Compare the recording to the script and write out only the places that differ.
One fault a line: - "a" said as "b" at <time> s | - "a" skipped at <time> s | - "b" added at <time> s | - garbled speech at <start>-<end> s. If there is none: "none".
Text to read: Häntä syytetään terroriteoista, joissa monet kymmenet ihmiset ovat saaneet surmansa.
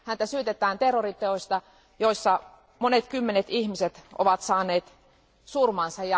none